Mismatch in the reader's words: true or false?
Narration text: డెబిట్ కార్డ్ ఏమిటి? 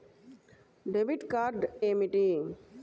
false